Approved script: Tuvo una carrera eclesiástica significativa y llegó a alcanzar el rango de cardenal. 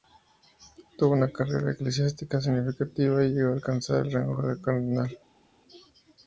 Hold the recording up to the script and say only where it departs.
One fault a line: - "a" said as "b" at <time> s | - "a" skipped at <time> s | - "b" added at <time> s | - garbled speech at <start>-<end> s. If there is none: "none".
none